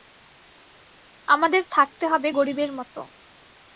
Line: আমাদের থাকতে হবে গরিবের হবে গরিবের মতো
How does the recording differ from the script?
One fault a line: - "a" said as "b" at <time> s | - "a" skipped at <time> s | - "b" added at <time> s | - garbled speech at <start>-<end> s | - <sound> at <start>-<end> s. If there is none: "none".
- "হবে গরিবের" skipped at 2.7 s